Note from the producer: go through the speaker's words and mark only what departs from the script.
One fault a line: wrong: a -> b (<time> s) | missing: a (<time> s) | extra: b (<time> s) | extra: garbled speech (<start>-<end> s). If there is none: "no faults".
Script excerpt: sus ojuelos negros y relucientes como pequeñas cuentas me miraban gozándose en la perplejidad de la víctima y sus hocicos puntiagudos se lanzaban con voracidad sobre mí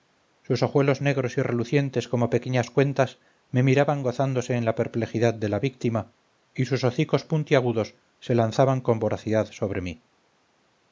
no faults